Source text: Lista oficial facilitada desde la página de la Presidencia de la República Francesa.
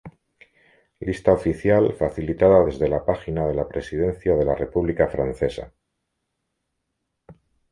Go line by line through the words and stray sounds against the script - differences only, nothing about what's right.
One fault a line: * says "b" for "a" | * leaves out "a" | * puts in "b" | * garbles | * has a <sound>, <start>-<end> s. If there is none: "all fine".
all fine